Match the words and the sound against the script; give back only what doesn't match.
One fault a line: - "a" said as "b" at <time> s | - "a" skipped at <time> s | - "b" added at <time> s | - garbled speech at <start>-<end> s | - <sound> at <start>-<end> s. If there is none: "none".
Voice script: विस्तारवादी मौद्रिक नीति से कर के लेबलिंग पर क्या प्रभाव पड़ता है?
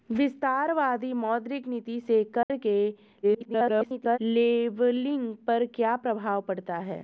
- dropout at 2.4-2.5 s
- garbled speech at 3.2-4.2 s